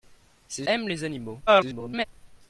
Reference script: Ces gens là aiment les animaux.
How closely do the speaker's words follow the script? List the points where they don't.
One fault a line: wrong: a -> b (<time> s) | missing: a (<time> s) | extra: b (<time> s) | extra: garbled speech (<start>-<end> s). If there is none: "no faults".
missing: gens là (0.7 s)
extra: garbled speech (1.5-2.0 s)